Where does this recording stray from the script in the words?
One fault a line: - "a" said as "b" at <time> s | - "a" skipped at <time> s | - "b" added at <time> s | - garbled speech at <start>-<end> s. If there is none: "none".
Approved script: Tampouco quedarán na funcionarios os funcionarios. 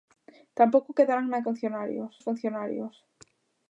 none